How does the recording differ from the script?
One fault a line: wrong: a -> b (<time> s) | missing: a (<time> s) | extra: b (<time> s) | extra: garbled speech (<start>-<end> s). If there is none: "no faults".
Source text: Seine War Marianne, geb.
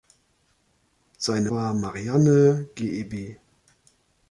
no faults